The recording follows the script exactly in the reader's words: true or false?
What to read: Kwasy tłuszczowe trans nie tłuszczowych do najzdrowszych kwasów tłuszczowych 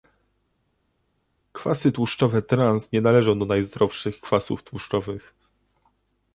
false